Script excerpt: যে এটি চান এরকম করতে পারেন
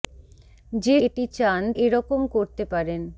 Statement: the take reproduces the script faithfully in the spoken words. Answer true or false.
true